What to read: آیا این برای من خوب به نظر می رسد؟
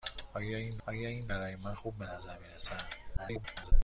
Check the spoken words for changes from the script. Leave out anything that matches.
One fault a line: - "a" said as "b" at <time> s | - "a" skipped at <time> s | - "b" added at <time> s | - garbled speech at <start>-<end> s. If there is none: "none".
- "آیا این" added at 0.9 s
- garbled speech at 3.2-3.7 s